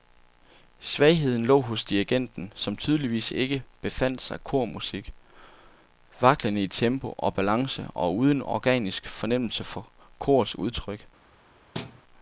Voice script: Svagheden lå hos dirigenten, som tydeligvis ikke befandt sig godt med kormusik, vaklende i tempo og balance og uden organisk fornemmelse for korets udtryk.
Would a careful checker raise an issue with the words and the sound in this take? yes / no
yes